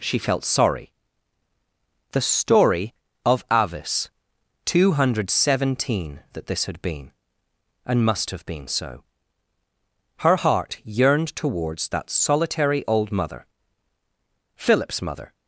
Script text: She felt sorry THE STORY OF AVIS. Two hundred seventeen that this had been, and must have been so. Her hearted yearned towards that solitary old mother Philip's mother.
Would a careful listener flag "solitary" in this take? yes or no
no